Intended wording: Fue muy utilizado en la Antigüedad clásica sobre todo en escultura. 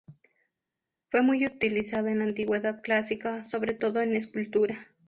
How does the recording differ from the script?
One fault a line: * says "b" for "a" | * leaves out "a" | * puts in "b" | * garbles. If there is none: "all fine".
all fine